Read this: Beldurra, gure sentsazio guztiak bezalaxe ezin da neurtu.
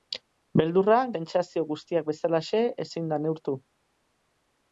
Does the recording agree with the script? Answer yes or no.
no